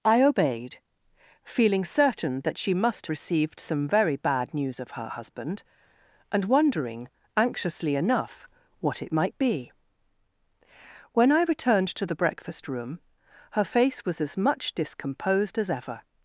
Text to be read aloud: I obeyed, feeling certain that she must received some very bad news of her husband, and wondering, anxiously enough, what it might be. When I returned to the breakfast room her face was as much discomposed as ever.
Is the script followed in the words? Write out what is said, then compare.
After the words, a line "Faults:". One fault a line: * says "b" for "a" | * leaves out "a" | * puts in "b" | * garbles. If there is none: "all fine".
I obeyed, feeling certain that she must received some very bad news of her husband, and wondering, anxiously enough, what it might be. When I returned to the breakfast room her face was as much discomposed as ever.
Faults:
all fine